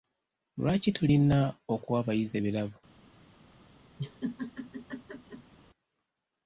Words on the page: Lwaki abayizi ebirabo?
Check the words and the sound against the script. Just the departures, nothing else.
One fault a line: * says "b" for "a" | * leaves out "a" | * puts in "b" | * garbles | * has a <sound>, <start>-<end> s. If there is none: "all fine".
* puts in "tulina okuwa"
* has a laugh, 4.0-5.5 s